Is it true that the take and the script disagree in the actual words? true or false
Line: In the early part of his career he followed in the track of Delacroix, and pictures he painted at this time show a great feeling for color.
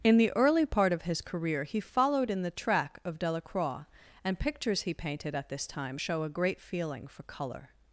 false